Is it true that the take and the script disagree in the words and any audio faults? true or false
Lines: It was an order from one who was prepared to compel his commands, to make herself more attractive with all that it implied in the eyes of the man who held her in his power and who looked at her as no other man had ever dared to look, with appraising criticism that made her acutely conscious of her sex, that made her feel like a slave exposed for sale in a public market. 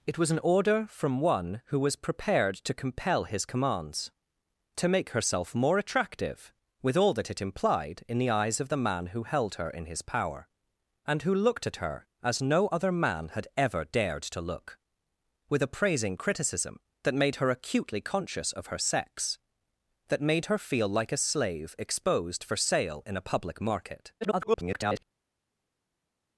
true